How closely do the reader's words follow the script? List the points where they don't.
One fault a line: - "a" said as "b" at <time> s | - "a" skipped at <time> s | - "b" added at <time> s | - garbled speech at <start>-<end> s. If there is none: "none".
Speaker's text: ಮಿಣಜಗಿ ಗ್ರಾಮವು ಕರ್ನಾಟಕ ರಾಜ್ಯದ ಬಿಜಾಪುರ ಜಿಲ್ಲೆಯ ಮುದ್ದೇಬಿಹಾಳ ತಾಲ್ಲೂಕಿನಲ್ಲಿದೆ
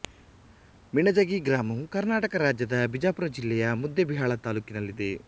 none